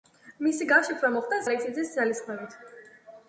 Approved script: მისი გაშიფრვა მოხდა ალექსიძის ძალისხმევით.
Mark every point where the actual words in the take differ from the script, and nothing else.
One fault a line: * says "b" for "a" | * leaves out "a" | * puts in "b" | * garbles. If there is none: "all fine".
all fine